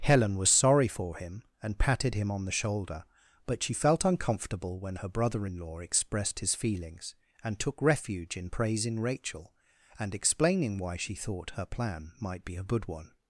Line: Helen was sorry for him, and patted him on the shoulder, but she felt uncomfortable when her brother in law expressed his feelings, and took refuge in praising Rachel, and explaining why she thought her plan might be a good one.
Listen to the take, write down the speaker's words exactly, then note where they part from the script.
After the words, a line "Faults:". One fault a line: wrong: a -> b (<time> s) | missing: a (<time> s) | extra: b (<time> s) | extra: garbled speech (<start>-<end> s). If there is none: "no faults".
Helen was sorry for him, and patted him on the shoulder, but she felt uncomfortable when her brother in law expressed his feelings, and took refuge in praising Rachel, and explaining why she thought her plan might be a good one.
Faults:
no faults